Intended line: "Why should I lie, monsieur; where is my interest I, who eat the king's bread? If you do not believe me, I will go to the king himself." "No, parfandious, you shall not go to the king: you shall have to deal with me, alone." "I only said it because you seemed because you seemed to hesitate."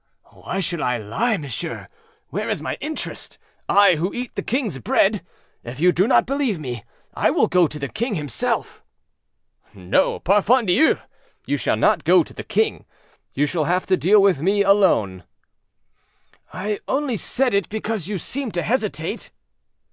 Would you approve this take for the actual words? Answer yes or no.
no